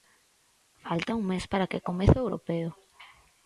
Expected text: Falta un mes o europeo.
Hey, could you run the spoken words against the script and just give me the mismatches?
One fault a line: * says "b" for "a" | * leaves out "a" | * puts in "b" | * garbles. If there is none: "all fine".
* puts in "para que comece"